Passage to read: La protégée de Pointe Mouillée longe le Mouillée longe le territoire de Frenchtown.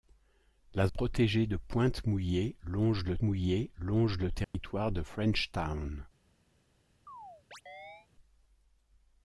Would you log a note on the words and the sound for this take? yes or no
yes